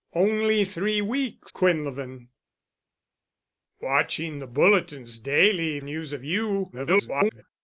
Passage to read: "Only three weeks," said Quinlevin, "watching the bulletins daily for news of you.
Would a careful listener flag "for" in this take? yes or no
yes